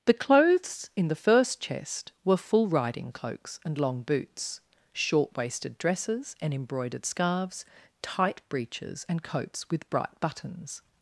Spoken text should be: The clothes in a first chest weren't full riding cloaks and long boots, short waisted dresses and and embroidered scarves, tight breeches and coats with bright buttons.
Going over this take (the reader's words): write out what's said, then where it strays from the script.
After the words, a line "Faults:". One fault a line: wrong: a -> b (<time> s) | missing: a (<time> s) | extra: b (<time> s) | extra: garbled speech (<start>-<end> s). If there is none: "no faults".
The clothes in the first chest were full riding cloaks and long boots, short waisted dresses and embroidered scarves, tight breeches and coats with bright buttons.
Faults:
wrong: a -> the (1.1 s)
wrong: weren't -> were (2.2 s)
missing: and (6.5 s)